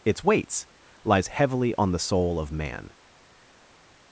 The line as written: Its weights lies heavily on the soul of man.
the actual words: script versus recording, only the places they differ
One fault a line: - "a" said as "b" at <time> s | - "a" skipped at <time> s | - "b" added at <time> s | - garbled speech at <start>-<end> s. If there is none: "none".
none